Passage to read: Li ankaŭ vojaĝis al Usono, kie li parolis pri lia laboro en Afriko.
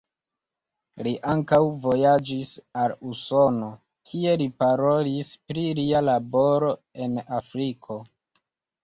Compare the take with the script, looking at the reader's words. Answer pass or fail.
pass